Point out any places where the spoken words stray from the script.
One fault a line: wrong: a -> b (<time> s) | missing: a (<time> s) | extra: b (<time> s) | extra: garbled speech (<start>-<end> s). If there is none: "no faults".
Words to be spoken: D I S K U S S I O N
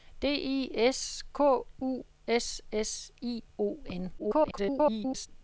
extra: garbled speech (4.2-5.3 s)